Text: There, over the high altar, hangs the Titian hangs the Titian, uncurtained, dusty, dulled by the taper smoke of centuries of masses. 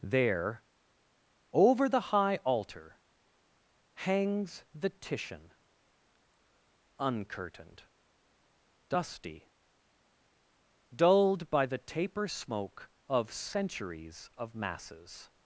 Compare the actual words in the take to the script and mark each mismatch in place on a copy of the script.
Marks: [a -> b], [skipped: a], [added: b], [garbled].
There, over the high altar, hangs the Titian [skipped: hangs the Titian,] uncurtained, dusty, dulled by the taper smoke of centuries of masses.